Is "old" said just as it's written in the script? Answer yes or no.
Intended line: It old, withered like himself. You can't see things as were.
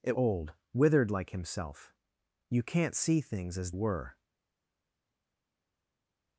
yes